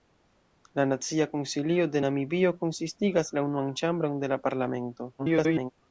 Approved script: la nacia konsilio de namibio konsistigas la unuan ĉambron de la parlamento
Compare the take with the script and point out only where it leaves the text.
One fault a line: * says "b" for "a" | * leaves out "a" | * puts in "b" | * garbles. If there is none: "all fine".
* garbles